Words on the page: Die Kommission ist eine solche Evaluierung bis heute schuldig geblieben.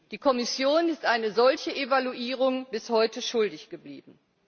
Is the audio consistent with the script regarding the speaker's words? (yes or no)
yes